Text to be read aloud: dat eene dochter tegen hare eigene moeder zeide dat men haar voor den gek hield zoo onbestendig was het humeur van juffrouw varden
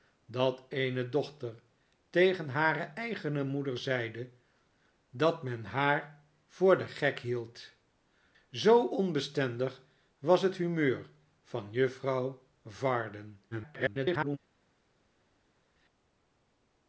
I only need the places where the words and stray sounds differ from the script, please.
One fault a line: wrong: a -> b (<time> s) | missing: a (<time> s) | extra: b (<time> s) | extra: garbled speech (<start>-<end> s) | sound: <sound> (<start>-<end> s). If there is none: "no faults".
extra: garbled speech (13.5-14.4 s)